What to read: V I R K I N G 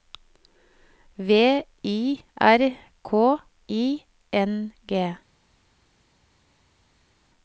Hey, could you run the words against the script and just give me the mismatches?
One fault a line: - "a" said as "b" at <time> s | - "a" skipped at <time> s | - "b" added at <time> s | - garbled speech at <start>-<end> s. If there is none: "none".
none